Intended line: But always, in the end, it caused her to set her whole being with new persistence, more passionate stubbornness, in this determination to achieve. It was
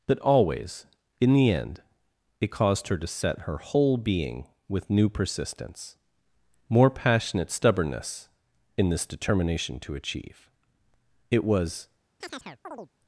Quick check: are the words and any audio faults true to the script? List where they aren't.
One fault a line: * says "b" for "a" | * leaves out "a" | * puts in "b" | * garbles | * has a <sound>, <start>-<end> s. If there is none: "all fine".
* has a chirp, 12.2-12.9 s